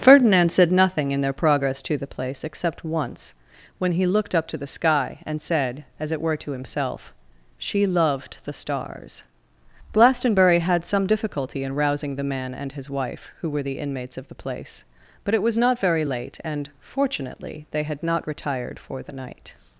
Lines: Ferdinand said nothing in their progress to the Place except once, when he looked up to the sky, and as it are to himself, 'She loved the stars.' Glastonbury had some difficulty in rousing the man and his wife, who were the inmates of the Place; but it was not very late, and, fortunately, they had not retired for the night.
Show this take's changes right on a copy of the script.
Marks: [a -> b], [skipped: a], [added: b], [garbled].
Ferdinand said nothing in their progress to the Place except once, when he looked up to the sky, and [added: said] as it [are -> were] to himself, 'She loved the stars.' Glastonbury had some difficulty in rousing the man and his wife, who were the inmates of the Place; but it was not very late, and, fortunately, they had not retired for the night.